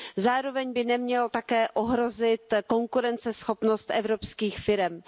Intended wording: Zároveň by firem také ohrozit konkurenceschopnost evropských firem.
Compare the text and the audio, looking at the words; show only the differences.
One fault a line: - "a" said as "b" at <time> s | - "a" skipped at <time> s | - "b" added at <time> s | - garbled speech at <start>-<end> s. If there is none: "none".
- "firem" said as "nemělo" at 0.8 s